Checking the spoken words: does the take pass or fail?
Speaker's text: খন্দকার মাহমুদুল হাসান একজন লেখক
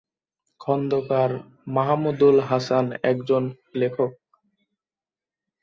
pass